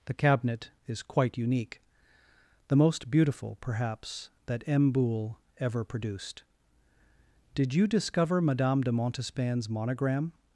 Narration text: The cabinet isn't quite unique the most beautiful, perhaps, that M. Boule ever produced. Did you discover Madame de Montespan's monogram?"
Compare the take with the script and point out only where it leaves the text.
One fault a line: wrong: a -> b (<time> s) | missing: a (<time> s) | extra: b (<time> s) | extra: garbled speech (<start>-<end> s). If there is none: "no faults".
wrong: isn't -> is (0.9 s)